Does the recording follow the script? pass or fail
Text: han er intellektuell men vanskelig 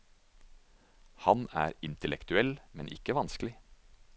fail